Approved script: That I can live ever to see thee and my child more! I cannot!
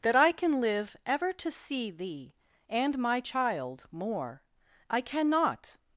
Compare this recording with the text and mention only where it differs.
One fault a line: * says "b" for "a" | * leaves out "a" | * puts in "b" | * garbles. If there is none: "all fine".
all fine